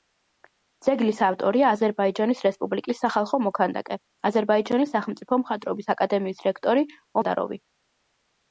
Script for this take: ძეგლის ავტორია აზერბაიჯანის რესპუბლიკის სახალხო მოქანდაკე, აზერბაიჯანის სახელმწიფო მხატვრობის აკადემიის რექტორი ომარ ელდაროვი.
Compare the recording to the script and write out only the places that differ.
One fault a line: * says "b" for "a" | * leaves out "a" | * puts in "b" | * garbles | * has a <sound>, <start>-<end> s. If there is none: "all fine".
* leaves out "ომარ"